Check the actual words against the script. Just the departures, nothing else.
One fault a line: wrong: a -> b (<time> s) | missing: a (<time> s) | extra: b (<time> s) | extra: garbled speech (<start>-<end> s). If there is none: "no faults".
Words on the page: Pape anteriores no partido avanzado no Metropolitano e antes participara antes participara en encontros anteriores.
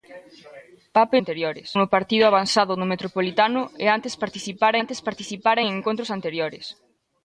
no faults